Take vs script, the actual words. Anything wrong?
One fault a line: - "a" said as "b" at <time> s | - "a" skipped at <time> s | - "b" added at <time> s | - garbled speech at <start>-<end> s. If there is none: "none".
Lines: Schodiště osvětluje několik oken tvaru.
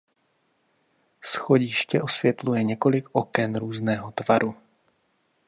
- "různého" added at 3.5 s